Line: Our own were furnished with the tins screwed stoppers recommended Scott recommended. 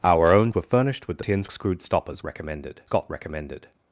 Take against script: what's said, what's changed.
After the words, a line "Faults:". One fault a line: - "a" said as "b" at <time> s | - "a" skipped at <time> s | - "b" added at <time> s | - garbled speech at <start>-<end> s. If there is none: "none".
Our own were furnished with the tins screwed stoppers recommended Scott recommended.
Faults:
none